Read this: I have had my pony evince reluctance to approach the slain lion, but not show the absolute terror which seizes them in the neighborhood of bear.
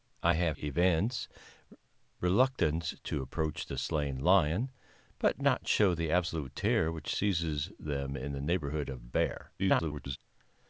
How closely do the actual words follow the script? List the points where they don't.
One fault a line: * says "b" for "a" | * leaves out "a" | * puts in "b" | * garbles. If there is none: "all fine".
* leaves out "had my pony"
* garbles